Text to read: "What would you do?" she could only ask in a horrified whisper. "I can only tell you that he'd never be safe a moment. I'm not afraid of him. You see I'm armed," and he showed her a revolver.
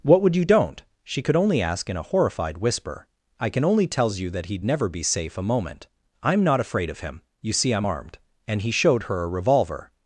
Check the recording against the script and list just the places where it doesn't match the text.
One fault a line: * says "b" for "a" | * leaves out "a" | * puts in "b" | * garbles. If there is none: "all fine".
* says "don't" for "do"
* says "tells" for "tell"